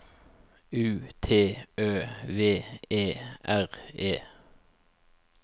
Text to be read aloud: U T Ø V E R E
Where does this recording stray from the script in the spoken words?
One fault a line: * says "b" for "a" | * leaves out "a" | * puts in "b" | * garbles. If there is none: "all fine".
all fine